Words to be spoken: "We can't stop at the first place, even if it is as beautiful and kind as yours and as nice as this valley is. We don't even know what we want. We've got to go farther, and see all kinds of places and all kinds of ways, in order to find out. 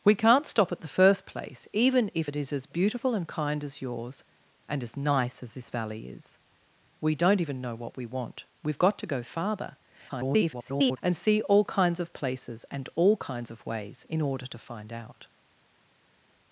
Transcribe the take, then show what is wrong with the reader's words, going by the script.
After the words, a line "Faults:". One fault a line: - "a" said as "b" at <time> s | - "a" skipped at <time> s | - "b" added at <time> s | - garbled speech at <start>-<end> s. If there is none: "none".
"We can't stop at the first place, even if it is as beautiful and kind as yours and as nice as this valley is. We don't even know what we want. We've got to go farther, [garbled] and see all kinds of places and all kinds of ways, in order to find out.
Faults:
- garbled speech at 10.1-11.0 s